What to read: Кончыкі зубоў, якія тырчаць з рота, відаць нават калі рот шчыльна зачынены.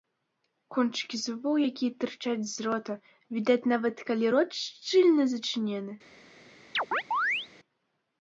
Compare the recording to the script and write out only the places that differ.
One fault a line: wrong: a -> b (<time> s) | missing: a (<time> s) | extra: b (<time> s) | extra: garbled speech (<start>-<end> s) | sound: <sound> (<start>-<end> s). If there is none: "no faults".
sound: chirp (6.7-7.5 s)